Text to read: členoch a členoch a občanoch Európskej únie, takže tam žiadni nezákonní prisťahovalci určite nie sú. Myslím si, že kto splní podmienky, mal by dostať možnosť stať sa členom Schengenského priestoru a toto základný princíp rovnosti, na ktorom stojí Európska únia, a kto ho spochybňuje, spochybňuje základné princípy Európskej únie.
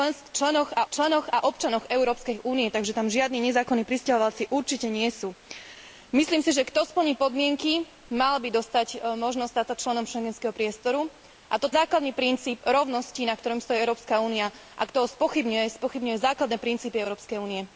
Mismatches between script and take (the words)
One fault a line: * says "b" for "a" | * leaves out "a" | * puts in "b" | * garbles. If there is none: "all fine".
all fine